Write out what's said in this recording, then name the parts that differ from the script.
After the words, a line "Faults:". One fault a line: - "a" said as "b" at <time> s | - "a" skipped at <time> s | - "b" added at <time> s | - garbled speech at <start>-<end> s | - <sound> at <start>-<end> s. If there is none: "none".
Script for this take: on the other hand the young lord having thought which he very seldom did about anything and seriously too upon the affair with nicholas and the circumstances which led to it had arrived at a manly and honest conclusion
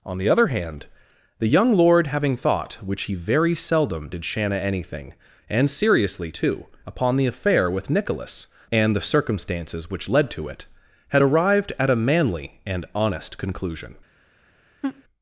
on the other hand the young lord having thought which he very seldom did shanna anything and seriously too upon the affair with nicholas and the circumstances which led to it had arrived at a manly and honest conclusion
Faults:
- "about" said as "shanna" at 4.3 s
- laugh at 14.8-15.0 s